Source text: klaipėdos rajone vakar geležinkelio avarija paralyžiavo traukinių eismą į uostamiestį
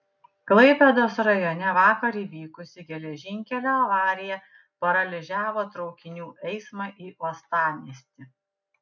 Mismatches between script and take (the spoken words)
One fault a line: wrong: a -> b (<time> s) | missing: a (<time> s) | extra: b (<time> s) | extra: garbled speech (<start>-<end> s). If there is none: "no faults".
extra: įvykusi (2.2 s)